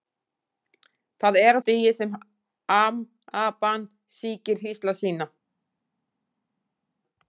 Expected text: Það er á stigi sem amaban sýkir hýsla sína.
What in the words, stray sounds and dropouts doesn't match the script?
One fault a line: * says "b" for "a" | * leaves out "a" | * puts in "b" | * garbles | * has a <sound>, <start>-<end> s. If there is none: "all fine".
all fine